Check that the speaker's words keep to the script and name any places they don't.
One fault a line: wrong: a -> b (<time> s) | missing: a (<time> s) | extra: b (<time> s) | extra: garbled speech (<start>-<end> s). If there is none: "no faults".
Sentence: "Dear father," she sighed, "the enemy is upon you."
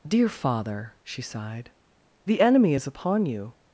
no faults